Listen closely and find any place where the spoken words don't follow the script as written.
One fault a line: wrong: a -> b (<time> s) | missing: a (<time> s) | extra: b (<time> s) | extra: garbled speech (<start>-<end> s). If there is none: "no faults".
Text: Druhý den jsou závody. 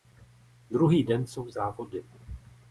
no faults